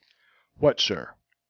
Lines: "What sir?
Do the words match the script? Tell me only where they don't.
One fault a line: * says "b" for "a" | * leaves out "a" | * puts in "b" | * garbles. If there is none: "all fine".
all fine